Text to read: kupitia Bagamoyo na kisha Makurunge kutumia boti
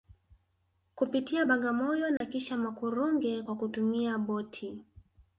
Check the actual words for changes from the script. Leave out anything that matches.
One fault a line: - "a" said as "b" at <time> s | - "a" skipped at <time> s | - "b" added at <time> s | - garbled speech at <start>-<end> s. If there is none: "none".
- "kwa" added at 3.4 s